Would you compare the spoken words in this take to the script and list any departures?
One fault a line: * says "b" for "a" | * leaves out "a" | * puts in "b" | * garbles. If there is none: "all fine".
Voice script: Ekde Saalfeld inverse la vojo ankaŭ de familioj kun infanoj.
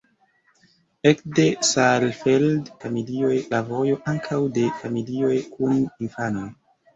* says "familioj" for "inverse"